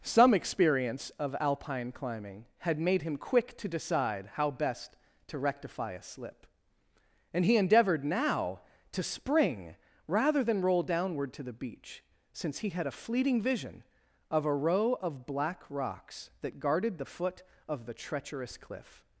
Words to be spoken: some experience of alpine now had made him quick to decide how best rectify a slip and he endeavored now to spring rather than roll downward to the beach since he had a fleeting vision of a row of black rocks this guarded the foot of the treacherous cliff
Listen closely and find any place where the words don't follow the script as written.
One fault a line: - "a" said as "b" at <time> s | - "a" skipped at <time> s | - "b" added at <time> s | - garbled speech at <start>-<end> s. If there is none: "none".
- "now" said as "climbing" at 1.9 s
- "to" added at 5.3 s
- "this" said as "that" at 16.4 s